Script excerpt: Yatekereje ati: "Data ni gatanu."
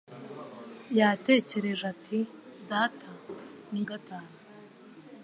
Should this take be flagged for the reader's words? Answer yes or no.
no